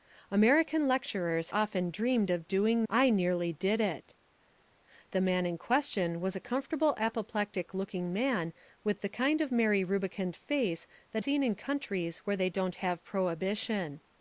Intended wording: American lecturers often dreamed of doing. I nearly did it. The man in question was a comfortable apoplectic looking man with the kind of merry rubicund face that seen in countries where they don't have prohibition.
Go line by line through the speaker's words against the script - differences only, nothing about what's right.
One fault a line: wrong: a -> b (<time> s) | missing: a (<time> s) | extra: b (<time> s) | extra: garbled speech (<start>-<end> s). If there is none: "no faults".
no faults